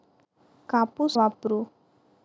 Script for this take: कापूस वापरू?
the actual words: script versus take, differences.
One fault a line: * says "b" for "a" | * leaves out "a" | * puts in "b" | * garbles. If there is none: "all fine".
all fine